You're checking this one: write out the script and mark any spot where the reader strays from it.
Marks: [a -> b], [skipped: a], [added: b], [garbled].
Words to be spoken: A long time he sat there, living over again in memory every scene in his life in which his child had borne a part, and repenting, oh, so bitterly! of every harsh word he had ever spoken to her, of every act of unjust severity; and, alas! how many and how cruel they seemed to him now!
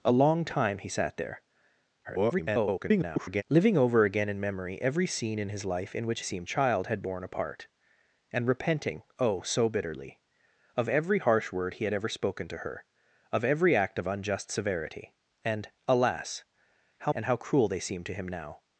A long time he sat there, [garbled] living over again in memory every scene in his life in which [his -> seemed] child had borne a part, and repenting, oh, so bitterly! of every harsh word he had ever spoken to her, of every act of unjust severity; and, alas! how [skipped: many] and how cruel they seemed to him now!